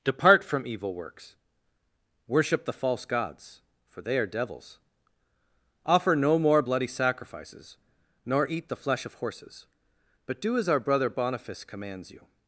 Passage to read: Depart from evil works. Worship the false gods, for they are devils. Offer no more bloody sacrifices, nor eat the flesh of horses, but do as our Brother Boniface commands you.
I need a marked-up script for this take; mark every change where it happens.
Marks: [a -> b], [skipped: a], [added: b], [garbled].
Depart from evil works. Worship the false gods, for they are devils. Offer no more bloody sacrifices, nor eat the flesh of horses, but do as our Brother Boniface commands you.